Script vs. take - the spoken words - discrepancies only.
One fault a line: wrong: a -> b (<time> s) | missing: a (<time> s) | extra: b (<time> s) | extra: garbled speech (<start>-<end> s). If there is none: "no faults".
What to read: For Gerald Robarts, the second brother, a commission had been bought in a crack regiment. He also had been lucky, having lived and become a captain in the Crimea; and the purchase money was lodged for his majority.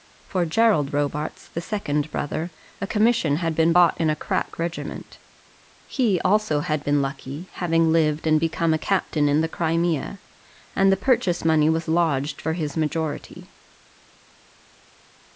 no faults